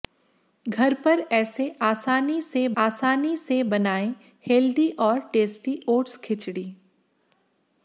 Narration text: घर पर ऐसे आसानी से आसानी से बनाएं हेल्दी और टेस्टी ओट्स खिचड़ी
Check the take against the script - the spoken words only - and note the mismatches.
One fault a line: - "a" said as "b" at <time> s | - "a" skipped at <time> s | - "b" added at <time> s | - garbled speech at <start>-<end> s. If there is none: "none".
none